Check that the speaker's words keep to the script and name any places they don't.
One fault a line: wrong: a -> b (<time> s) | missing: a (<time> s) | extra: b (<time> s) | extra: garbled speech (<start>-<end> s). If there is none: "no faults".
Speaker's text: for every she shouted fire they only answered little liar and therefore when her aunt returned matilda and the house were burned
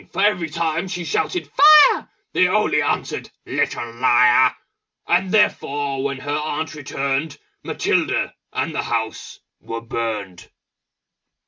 extra: time (0.5 s)